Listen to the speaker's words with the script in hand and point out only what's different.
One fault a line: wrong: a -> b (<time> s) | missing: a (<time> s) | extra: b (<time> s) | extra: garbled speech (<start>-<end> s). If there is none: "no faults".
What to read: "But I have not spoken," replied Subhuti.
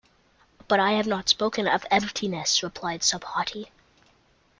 extra: of emptiness (1.7 s)